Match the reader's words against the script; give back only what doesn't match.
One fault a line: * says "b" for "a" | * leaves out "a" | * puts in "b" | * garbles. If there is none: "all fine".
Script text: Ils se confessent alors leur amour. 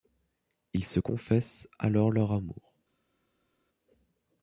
all fine